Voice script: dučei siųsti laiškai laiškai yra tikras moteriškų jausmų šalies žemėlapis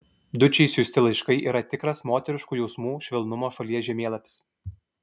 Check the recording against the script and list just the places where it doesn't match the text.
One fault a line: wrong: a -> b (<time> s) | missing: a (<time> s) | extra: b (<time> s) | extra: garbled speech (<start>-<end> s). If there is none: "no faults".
missing: laiškai (1.4 s)
extra: švelnumo (3.1 s)